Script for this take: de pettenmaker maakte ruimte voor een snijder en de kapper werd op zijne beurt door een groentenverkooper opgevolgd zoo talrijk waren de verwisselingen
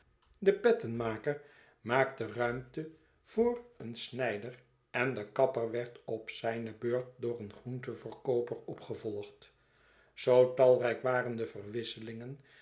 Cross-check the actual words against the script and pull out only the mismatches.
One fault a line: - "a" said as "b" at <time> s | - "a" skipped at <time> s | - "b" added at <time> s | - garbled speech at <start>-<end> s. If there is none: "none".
none